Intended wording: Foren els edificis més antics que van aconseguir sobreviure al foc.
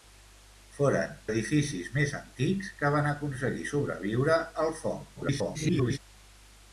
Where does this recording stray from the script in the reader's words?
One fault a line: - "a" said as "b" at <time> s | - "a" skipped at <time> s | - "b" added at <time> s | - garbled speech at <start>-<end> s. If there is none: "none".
- "els" skipped at 1.1 s
- garbled speech at 5.1-6.0 s